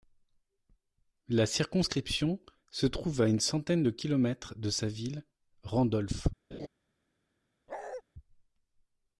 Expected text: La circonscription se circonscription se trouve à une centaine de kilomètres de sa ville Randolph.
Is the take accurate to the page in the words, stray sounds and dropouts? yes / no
no